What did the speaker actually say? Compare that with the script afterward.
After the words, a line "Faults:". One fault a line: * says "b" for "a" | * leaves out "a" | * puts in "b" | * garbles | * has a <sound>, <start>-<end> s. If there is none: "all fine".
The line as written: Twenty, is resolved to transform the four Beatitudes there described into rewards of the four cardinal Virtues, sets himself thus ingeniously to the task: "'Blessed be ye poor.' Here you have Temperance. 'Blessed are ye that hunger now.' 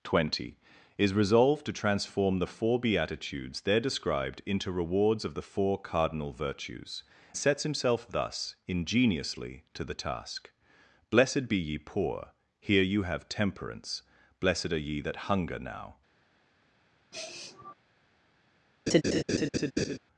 Twenty, is resolved to transform the four Beatitudes there described into rewards of the four cardinal Virtues, sets himself thus ingeniously to the task: "'Blessed be ye poor.' Here you have Temperance. 'Blessed are ye that hunger now.'
Faults:
* has a sniff, 17.1-17.7 s
* has a laugh, 18.9-20.0 s